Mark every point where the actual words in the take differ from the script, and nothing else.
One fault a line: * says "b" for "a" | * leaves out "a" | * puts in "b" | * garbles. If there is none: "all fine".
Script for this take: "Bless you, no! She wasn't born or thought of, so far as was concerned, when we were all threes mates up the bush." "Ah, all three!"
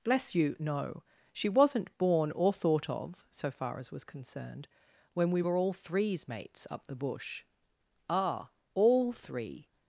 all fine